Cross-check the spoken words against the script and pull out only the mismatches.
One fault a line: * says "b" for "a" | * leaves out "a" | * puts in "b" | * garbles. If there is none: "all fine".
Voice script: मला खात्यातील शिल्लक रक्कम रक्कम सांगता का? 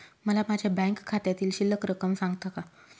* puts in "माझ्या बँक"
* leaves out "रक्कम"